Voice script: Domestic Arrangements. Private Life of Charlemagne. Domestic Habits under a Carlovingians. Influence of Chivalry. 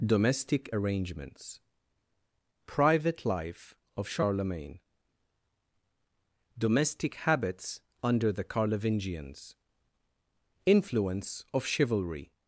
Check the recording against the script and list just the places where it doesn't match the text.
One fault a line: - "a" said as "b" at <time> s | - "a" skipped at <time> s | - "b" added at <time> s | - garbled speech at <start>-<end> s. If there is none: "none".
- "a" said as "the" at 8.3 s